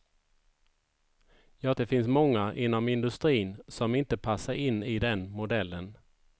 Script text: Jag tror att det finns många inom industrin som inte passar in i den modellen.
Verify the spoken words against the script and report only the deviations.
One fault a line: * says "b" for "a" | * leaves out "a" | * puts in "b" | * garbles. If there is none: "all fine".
* leaves out "tror att"